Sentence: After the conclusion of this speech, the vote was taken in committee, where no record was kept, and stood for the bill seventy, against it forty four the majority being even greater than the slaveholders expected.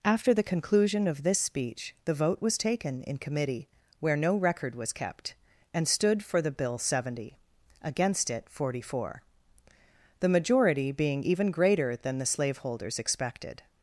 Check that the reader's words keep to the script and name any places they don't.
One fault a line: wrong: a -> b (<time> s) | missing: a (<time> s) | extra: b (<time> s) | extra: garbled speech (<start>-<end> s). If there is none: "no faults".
no faults